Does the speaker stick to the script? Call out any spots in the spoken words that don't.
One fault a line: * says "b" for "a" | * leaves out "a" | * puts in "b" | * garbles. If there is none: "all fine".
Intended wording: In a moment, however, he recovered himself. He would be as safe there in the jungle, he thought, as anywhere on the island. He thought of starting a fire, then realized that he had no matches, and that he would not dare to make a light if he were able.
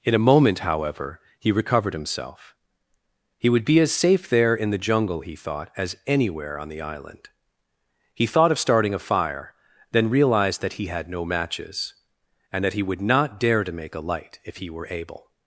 all fine